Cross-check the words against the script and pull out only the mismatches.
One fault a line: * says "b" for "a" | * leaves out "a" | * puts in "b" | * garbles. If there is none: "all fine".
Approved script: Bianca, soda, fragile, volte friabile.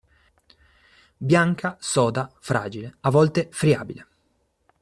* puts in "a"